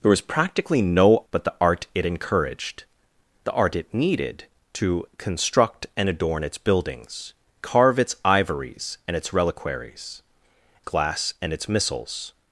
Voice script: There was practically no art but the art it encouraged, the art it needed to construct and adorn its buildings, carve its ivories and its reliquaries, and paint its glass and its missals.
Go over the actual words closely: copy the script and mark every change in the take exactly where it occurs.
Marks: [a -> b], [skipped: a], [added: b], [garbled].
There was practically no [skipped: art] but the art it encouraged, the art it needed to construct and adorn its buildings, carve its ivories and its reliquaries, [skipped: and paint its] glass and its missals.